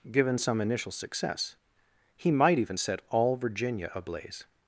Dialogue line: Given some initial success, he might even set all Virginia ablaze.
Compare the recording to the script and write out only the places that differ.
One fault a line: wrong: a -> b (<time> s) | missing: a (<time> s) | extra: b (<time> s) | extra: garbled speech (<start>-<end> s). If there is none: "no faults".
no faults